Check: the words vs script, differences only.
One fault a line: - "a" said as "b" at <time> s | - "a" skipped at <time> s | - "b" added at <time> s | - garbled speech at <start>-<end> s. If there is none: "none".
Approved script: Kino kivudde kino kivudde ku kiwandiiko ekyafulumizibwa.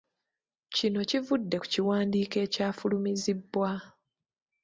- "kino kivudde" skipped at 1.6 s